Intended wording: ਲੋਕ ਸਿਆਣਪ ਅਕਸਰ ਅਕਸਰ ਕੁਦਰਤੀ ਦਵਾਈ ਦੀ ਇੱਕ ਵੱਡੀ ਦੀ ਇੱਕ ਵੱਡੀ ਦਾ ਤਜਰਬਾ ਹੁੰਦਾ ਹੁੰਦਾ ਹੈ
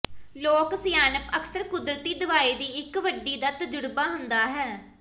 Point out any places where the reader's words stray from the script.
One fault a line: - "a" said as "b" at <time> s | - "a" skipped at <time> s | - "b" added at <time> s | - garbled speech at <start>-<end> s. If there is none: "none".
- "ਅਕਸਰ" skipped at 1.6 s
- "ਦੀ ਇੱਕ ਵੱਡੀ" skipped at 3.4 s
- "ਹੁੰਦਾ" skipped at 4.5 s